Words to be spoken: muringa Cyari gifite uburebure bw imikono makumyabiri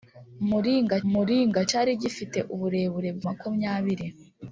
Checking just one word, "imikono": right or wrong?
wrong